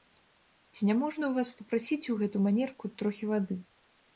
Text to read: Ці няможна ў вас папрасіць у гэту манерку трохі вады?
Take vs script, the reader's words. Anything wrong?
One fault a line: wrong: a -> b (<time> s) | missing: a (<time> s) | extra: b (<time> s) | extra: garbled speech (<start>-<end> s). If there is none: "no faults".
no faults